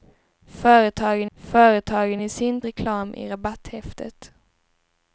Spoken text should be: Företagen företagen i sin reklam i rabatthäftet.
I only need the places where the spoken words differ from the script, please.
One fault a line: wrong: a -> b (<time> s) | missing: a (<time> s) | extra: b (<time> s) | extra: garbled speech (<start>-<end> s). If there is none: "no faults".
no faults